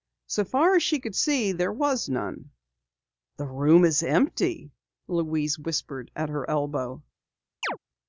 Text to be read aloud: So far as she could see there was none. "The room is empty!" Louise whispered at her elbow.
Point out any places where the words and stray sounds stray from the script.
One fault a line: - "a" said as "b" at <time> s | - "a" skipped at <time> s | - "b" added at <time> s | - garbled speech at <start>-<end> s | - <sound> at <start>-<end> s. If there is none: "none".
- chirp at 7.6-7.8 s